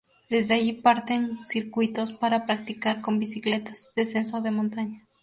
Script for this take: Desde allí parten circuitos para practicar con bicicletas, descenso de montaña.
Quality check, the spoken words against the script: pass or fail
pass